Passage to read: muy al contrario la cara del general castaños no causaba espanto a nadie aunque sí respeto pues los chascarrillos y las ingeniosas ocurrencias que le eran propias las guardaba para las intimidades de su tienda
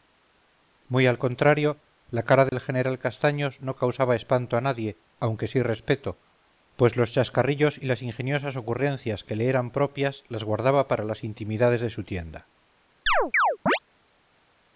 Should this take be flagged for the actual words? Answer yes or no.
no